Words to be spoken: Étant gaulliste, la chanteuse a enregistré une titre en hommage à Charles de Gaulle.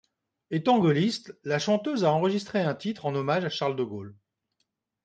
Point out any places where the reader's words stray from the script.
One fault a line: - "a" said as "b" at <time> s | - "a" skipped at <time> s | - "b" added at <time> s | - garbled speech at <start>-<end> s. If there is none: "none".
- "une" said as "un" at 2.6 s